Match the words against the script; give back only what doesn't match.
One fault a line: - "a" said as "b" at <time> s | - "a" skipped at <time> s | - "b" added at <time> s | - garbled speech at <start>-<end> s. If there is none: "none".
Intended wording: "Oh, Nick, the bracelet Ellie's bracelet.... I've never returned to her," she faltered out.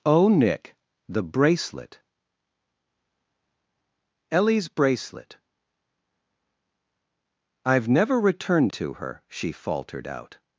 none